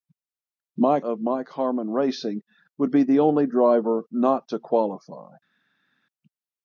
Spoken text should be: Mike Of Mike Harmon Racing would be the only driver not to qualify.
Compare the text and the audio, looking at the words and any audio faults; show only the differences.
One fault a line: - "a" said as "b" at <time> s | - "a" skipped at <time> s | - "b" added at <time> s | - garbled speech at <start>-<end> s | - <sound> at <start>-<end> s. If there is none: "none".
none